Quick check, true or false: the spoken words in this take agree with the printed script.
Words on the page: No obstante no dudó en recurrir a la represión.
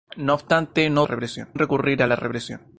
false